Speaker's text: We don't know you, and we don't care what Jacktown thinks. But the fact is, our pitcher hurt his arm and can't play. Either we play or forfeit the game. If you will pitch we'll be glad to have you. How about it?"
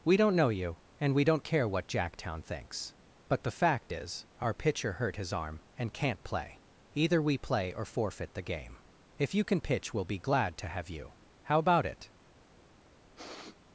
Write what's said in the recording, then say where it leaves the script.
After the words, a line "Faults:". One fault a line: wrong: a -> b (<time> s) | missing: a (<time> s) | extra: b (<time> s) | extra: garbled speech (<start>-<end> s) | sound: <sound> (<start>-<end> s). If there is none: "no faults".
We don't know you, and we don't care what Jacktown thinks. But the fact is, our pitcher hurt his arm and can't play. Either we play or forfeit the game. If you can pitch we'll be glad to have you. How about it?"
Faults:
wrong: will -> can (9.4 s)
sound: sniff (13.1-13.6 s)